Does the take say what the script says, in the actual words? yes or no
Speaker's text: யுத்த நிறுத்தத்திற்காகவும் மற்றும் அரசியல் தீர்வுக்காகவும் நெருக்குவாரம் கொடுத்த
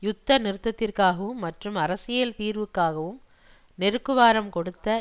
yes